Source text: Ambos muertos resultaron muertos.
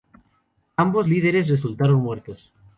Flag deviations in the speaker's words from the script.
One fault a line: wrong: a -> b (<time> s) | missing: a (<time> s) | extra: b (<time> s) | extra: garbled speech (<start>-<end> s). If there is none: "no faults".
wrong: muertos -> líderes (1.0 s)